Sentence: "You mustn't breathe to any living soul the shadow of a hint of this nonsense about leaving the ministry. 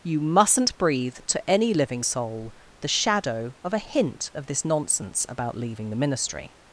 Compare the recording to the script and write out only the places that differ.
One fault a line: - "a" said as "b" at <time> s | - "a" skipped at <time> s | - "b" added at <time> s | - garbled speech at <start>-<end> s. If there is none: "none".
none